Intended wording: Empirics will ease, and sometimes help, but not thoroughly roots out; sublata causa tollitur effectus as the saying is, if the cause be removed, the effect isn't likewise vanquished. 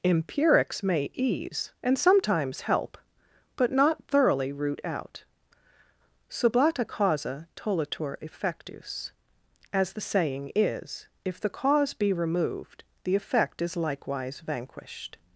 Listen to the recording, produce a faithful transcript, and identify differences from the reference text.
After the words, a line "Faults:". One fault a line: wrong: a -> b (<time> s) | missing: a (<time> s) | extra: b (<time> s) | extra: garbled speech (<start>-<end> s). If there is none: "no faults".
Empirics may ease, and sometimes help, but not thoroughly root out; sublata causa tollitur effectus as the saying is, if the cause be removed, the effect is likewise vanquished.
Faults:
wrong: will -> may (0.8 s)
wrong: roots -> root (4.5 s)
wrong: isn't -> is (13.6 s)